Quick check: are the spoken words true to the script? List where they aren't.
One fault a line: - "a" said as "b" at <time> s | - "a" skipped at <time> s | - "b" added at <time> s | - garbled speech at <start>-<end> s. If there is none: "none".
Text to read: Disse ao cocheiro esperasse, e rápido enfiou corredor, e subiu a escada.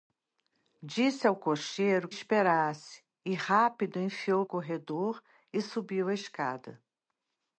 none